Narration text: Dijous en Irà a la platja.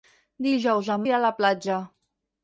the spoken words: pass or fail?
pass